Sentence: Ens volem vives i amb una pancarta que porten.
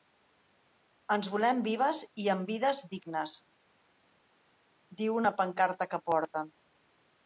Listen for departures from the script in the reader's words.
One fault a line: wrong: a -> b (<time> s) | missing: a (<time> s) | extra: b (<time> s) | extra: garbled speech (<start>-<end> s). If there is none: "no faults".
extra: vides dignes diu (2.5 s)